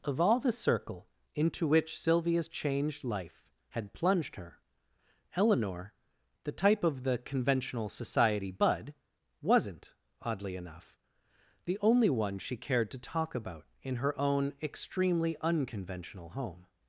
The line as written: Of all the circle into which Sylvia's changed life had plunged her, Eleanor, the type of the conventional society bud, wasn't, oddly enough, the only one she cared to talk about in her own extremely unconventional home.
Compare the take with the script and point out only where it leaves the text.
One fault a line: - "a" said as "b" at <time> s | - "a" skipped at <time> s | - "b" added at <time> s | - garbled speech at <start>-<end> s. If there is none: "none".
none